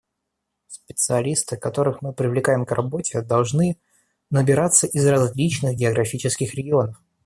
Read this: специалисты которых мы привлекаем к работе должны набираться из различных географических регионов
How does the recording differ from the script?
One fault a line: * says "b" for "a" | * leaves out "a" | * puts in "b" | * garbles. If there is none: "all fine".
all fine